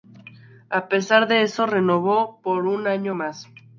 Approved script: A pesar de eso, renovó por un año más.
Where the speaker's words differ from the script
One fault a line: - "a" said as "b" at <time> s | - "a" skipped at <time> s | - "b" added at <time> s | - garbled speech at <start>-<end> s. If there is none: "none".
none